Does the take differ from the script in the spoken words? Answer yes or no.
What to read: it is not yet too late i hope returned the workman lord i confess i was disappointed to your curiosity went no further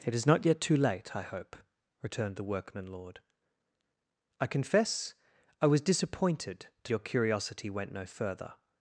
no